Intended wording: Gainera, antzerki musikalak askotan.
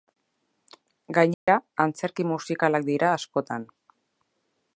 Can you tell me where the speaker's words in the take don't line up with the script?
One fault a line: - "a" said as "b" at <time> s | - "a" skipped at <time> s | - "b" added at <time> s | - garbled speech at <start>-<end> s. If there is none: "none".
- "dira" added at 2.9 s